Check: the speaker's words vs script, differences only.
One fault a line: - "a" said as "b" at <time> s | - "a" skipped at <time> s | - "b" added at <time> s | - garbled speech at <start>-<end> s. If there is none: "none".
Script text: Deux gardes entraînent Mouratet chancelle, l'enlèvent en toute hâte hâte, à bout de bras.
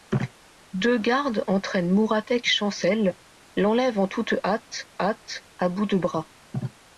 none